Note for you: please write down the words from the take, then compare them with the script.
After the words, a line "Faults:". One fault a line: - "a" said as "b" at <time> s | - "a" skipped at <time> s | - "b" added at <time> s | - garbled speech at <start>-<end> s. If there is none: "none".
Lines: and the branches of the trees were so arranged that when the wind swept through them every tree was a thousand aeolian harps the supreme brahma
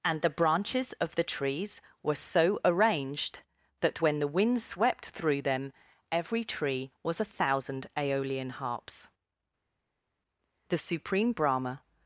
and the branches of the trees were so arranged that when the wind swept through them every tree was a thousand aeolian harps the supreme brahma
Faults:
none